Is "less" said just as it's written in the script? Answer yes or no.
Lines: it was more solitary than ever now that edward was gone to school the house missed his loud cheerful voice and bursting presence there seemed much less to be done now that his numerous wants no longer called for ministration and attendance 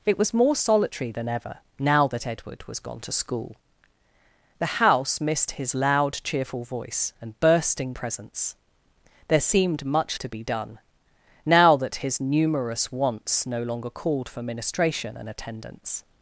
no